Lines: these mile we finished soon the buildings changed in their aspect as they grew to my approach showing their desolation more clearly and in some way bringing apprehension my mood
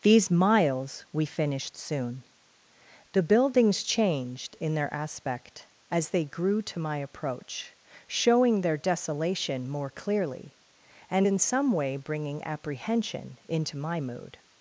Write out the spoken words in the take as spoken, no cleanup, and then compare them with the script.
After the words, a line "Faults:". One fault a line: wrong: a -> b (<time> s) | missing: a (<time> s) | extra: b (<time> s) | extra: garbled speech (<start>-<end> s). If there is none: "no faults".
these miles we finished soon the buildings changed in their aspect as they grew to my approach showing their desolation more clearly and in some way bringing apprehension into my mood
Faults:
wrong: mile -> miles (0.3 s)
extra: into (13.5 s)